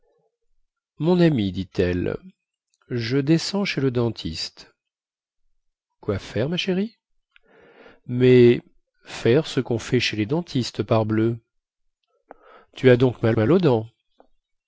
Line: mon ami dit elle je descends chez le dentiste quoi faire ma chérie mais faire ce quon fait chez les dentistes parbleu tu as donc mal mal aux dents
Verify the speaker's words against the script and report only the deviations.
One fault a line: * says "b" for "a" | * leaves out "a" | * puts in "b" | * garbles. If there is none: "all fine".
all fine